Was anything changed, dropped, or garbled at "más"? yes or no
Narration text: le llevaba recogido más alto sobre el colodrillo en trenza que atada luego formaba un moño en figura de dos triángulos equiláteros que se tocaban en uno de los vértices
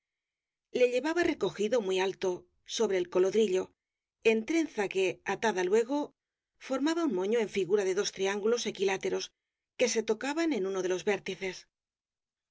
yes